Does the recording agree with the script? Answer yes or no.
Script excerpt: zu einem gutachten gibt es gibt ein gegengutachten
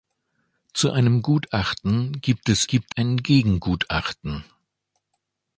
yes